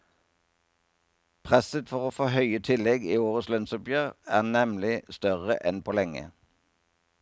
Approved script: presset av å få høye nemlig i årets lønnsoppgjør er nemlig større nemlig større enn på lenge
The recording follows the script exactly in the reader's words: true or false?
false